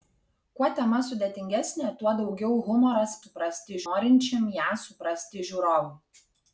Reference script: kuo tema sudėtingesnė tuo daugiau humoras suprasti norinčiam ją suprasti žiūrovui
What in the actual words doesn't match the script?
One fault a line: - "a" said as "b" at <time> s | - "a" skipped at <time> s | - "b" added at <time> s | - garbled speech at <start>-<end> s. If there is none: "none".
none